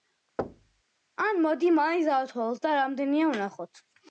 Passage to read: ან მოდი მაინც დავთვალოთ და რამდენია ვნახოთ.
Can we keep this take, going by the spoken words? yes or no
yes